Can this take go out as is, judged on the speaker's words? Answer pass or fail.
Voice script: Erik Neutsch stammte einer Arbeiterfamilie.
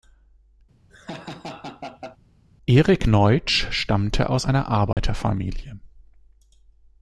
fail